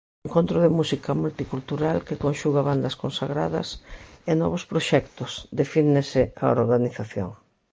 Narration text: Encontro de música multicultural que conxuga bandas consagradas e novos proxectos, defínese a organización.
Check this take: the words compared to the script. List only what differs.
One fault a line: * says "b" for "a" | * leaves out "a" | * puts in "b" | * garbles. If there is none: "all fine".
all fine